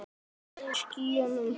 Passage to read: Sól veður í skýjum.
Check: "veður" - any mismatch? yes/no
yes